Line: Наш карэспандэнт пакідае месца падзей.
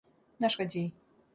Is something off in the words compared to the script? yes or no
yes